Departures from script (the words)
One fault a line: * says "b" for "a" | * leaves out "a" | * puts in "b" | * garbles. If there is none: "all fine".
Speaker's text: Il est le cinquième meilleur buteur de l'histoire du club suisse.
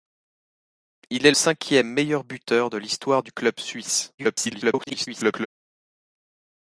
* leaves out "le"
* garbles